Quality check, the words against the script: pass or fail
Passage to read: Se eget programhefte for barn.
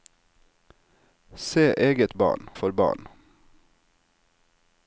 fail